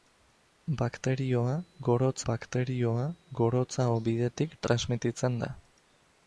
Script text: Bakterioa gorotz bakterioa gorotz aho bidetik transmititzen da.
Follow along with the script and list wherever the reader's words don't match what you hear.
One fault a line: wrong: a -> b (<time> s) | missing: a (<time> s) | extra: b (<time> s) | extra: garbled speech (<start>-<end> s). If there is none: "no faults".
no faults